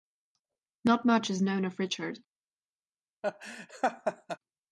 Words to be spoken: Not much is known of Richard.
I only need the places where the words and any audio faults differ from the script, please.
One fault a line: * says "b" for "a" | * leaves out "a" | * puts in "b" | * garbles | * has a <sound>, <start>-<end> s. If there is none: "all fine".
* has a laugh, 3.2-4.4 s